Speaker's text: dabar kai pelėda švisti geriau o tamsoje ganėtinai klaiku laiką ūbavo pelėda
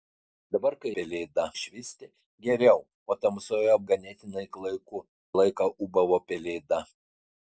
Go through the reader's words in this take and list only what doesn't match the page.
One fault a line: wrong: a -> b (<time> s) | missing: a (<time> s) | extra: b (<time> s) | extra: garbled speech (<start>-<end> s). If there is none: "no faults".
no faults